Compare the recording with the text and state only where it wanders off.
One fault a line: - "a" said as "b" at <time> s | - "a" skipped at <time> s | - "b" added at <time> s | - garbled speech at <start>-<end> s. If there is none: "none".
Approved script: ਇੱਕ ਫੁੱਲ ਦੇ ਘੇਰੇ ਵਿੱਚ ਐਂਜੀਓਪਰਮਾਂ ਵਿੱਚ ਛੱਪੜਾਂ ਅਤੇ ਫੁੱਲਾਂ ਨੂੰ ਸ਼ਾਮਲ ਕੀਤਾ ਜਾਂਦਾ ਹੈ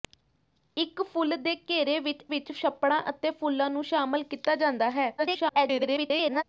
- "ਐਂਜੀਓਪਰਮਾਂ" skipped at 2.2 s
- garbled speech at 5.2-6.4 s